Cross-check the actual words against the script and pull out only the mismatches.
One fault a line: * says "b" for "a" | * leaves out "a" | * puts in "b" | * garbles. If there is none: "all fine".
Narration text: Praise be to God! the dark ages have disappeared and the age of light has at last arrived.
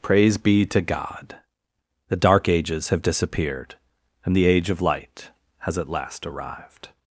all fine